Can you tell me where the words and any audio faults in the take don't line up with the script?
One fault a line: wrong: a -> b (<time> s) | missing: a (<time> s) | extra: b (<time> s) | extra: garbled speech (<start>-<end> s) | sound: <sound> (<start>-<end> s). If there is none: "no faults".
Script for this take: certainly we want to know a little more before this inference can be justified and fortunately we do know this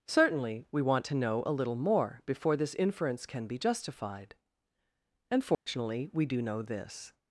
sound: dropout (5.5-5.7 s)